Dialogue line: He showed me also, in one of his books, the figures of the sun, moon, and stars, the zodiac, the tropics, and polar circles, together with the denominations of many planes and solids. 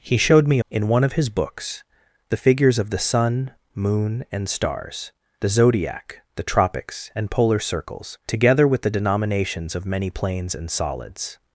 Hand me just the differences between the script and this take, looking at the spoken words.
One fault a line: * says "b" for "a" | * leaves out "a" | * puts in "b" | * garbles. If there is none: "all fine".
* leaves out "also"